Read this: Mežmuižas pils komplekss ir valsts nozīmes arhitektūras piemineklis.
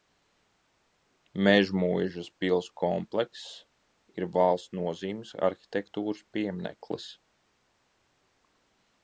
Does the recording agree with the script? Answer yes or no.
yes